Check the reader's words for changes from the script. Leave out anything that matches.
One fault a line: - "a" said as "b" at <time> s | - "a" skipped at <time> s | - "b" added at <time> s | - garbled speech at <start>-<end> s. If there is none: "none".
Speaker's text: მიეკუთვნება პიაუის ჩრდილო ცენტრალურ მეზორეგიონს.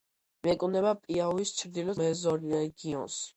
- "ცენტრალურ" skipped at 2.0 s